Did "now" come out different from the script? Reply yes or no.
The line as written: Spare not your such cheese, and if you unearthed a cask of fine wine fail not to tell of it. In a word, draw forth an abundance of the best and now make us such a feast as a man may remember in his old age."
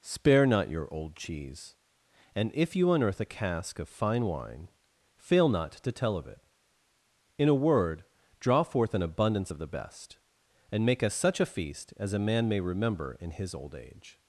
yes